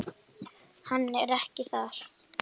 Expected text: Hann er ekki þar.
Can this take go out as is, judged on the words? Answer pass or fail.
pass